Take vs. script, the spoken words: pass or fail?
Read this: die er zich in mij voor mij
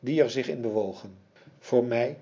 fail